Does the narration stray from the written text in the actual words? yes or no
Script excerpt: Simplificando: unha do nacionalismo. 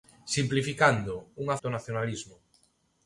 no